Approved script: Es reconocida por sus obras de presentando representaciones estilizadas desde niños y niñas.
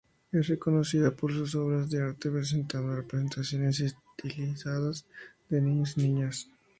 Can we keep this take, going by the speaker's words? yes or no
no